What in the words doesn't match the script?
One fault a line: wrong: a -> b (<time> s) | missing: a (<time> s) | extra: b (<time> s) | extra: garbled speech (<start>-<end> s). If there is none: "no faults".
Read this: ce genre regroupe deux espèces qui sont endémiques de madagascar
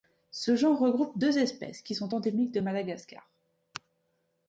no faults